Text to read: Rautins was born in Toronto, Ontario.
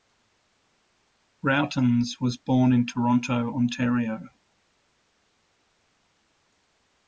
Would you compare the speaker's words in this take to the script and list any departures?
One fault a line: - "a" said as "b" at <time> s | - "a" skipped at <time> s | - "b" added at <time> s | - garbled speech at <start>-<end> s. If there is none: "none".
none